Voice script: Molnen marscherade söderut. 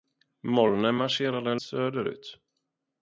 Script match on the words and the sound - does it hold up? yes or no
yes